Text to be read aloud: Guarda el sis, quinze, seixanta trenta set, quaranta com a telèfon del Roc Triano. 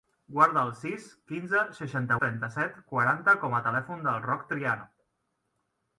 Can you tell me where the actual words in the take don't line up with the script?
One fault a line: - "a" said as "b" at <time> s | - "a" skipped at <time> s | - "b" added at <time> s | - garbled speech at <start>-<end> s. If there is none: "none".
none